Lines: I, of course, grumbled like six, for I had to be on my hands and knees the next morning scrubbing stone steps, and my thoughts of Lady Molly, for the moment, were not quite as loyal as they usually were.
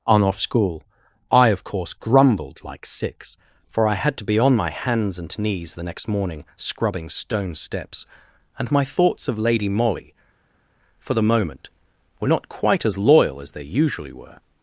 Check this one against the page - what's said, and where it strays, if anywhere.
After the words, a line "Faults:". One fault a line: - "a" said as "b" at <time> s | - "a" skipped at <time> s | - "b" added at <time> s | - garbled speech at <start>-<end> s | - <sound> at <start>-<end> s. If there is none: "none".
on off school I, of course, grumbled like six, for I had to be on my hands and knees the next morning scrubbing stone steps, and my thoughts of Lady Molly, for the moment, were not quite as loyal as they usually were.
Faults:
- "on off school" added at 0.1 s